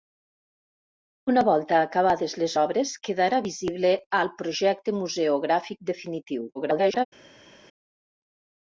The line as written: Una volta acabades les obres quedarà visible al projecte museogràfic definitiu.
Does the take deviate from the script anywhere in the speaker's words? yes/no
yes